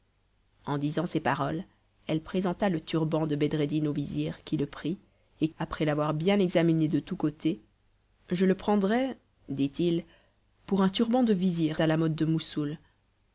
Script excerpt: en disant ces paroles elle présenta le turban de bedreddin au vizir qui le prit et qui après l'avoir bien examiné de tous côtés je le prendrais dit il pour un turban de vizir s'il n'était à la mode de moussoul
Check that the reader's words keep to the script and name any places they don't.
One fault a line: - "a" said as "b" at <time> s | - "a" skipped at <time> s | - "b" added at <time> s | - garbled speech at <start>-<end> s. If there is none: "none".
- "qui" skipped at 5.5 s
- "s'il n'était" skipped at 11.8 s